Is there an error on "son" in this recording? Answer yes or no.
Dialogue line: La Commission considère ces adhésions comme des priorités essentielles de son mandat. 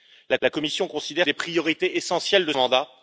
yes